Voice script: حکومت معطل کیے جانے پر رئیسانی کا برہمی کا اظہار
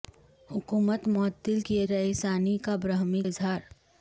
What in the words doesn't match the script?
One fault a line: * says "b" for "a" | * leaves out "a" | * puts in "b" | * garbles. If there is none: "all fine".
* leaves out "جانے پر"
* leaves out "کا"